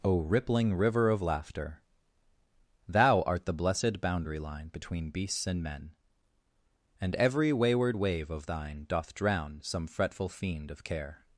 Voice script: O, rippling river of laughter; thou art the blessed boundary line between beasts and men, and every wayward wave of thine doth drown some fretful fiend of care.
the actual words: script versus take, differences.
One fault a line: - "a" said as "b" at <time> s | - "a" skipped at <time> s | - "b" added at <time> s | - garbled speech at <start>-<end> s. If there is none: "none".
none